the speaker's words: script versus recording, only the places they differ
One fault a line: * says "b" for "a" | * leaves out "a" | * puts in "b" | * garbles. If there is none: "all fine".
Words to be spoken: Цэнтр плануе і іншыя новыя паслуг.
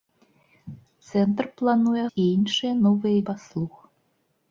all fine